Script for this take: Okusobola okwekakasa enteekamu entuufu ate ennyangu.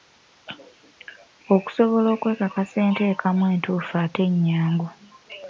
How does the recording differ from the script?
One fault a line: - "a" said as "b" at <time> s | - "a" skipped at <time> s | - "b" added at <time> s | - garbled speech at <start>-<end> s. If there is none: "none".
none